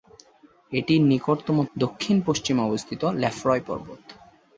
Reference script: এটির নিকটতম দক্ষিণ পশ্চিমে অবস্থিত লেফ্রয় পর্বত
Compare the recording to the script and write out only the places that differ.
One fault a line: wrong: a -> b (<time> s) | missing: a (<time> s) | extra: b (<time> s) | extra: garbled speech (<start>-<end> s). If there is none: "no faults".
no faults